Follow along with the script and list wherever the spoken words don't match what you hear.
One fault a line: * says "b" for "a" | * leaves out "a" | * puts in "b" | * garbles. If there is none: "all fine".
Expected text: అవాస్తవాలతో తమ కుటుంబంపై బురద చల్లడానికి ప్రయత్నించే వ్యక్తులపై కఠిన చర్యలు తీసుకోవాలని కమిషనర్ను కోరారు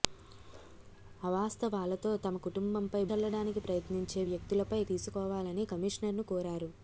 * leaves out "బురద"
* leaves out "కఠిన చర్యలు"